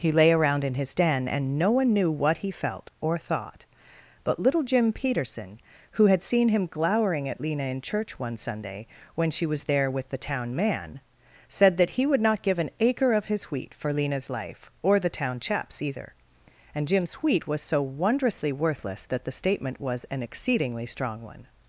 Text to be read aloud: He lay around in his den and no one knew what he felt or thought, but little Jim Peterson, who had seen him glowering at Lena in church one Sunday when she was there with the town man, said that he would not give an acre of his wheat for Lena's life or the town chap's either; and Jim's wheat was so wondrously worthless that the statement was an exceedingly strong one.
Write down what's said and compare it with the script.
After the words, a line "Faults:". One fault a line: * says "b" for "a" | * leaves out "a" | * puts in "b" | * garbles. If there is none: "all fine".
He lay around in his den and no one knew what he felt or thought, but little Jim Peterson, who had seen him glowering at Lena in church one Sunday when she was there with the town man, said that he would not give an acre of his wheat for Lena's life or the town chap's either; and Jim's wheat was so wondrously worthless that the statement was an exceedingly strong one.
Faults:
all fine